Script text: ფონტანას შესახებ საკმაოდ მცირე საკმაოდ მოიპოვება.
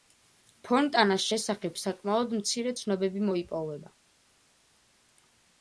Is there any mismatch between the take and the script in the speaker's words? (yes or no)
yes